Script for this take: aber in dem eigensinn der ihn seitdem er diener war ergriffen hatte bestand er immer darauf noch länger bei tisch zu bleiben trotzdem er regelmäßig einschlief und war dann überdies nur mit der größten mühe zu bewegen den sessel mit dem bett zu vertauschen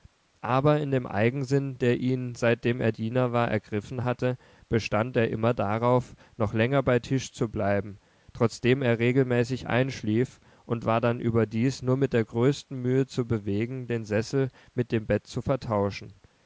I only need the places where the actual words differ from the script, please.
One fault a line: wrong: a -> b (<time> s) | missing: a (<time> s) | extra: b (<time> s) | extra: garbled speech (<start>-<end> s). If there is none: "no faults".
no faults